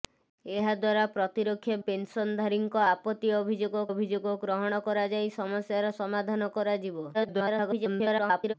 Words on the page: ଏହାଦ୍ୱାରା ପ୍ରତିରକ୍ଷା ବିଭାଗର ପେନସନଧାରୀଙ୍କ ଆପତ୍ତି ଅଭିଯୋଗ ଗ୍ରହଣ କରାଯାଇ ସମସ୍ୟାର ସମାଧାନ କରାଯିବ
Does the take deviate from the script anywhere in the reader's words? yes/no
yes